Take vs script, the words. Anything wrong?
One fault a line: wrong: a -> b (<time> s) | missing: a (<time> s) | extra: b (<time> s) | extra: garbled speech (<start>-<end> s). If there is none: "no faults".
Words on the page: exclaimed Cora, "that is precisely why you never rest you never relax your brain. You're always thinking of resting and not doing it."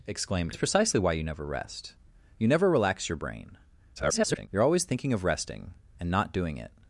missing: Cora that (0.6 s)
extra: garbled speech (4.0-4.5 s)